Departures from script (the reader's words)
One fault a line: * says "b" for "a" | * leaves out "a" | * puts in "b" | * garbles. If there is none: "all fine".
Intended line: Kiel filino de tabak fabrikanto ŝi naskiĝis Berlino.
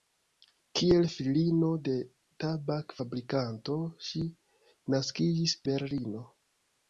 all fine